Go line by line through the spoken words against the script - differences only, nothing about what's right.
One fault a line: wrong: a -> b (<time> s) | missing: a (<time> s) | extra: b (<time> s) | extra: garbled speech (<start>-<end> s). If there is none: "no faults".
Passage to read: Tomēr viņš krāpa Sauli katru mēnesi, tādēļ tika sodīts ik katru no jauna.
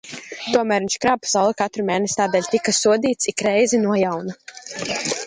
wrong: katru -> reizi (3.5 s)